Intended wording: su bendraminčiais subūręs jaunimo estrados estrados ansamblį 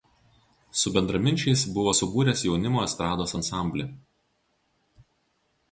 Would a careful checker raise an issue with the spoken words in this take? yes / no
yes